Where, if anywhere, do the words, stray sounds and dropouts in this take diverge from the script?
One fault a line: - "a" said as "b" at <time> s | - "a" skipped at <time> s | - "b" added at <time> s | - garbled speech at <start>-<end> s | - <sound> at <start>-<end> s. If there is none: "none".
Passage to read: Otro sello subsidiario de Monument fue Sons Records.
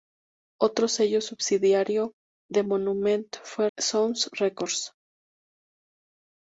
none